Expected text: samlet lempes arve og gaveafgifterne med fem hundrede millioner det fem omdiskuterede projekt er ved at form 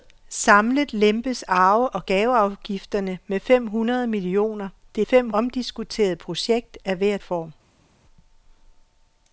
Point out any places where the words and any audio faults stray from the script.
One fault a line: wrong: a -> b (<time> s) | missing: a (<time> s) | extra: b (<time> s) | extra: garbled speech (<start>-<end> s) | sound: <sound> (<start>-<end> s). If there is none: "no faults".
no faults